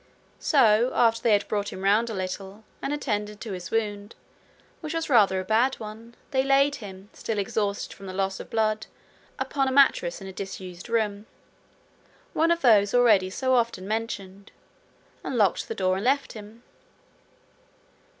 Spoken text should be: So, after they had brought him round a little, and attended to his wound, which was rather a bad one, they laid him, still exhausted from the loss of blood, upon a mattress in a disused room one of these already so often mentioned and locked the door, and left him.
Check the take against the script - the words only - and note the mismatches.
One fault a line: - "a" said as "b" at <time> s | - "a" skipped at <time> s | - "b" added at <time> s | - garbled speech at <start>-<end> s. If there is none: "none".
- "these" said as "those" at 12.6 s